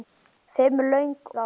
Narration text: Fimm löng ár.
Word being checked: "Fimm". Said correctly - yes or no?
yes